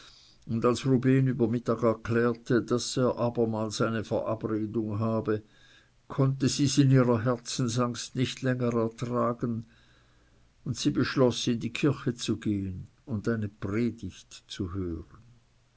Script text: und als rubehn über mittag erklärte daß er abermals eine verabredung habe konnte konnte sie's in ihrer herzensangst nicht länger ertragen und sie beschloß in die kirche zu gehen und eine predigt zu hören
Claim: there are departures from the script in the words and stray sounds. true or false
true